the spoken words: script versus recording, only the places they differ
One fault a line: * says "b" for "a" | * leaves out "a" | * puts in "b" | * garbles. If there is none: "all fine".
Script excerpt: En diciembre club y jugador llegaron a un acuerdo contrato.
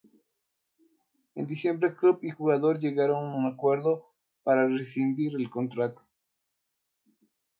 * puts in "para rescindir el"